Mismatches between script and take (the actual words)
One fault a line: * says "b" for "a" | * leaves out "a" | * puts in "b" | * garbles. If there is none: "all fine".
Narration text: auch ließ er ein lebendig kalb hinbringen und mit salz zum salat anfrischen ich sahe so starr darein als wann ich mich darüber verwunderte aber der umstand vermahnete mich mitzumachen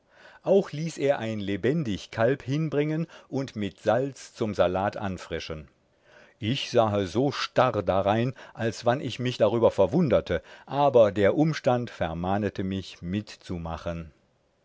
all fine